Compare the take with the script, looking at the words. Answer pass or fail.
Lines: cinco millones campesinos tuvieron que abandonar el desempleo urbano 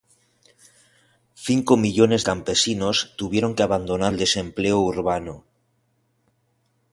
pass